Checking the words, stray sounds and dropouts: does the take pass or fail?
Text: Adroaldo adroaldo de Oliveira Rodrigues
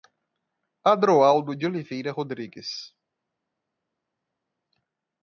fail